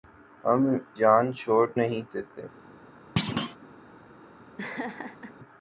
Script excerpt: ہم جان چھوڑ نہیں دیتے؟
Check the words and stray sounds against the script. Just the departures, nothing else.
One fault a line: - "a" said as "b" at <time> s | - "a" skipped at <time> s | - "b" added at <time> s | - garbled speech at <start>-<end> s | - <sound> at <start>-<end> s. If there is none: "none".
- thud at 3.2-3.6 s
- laugh at 4.6-5.3 s